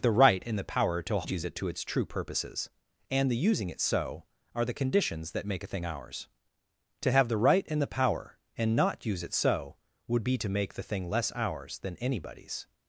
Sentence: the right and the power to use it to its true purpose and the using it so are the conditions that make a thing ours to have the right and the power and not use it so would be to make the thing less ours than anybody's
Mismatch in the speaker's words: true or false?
true